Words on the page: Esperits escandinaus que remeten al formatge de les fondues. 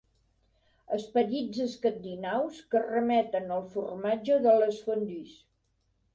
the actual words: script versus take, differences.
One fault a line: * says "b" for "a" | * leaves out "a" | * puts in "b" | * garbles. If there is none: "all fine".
all fine